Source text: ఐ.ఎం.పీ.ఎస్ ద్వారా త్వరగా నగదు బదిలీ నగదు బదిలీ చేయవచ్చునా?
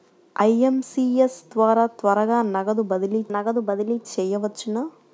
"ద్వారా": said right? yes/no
yes